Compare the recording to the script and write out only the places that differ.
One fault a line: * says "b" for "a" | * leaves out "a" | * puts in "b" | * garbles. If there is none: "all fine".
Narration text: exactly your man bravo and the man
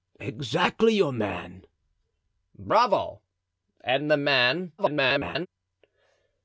* garbles